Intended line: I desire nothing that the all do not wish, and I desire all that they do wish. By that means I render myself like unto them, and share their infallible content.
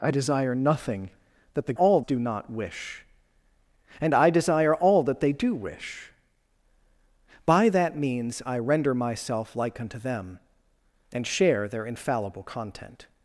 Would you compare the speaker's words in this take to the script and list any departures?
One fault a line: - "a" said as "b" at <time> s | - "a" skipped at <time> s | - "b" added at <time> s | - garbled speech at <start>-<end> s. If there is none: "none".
none